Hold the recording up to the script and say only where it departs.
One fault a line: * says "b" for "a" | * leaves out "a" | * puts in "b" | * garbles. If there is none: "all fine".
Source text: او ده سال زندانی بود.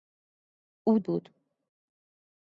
* leaves out "ده سال زندانی"